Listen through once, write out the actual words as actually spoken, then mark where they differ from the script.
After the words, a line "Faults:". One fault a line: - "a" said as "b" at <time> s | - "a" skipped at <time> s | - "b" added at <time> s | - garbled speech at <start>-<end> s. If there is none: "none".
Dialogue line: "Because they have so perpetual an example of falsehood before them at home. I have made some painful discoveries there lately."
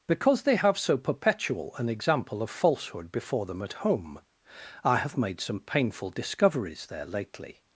"Because they have so perpetual an example of falsehood before them at home. I have made some painful discoveries there lately."
Faults:
none